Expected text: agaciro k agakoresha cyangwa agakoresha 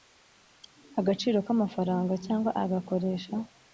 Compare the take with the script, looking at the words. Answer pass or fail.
fail